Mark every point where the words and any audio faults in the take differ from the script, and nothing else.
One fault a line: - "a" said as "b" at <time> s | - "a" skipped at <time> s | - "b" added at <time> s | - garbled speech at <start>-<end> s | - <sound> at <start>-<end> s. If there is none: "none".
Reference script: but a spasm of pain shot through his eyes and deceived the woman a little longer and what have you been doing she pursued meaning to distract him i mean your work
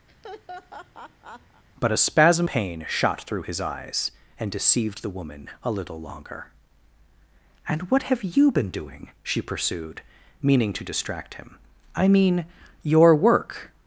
- laugh at 0.1-1.6 s
- "of" skipped at 2.5 s